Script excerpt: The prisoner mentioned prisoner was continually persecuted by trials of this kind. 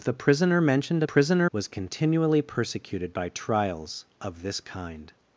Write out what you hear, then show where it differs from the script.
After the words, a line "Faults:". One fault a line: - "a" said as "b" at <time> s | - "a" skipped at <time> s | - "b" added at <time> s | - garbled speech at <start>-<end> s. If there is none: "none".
The prisoner mentioned prisoner was continually persecuted by trials of this kind.
Faults:
none